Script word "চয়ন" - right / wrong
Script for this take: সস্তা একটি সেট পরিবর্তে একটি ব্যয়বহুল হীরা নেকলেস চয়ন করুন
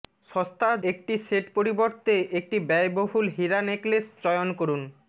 right